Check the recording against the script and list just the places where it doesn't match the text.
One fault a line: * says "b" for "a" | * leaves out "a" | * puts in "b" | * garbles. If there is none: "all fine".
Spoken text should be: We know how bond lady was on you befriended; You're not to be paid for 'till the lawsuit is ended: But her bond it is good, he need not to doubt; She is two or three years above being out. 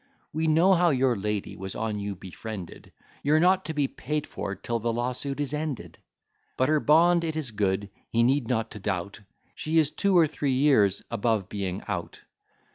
* says "your" for "bond"